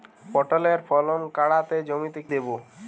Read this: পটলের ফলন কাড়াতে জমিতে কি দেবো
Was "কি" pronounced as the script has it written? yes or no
no